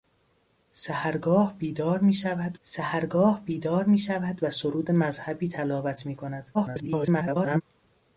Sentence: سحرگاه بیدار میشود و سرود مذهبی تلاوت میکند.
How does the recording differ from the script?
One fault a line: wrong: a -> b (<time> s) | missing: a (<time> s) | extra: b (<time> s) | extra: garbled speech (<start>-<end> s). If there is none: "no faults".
extra: سحرگاه بیدار میشود (2.6 s)
extra: garbled speech (6.5-7.6 s)